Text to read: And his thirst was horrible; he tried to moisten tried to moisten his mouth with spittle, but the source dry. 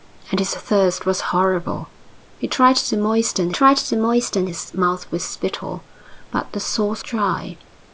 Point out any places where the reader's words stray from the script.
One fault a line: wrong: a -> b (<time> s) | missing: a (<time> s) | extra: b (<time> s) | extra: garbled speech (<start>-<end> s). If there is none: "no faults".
no faults